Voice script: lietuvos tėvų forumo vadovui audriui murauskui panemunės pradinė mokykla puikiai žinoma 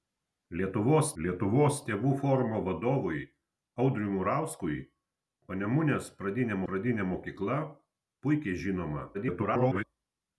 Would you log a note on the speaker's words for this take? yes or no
yes